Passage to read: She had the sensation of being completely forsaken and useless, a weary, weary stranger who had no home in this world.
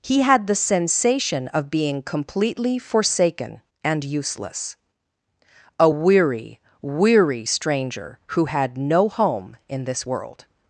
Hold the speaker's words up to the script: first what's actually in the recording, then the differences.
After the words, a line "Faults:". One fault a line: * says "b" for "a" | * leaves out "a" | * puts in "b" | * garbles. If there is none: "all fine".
He had the sensation of being completely forsaken and useless, a weary, weary stranger who had no home in this world.
Faults:
* says "He" for "She"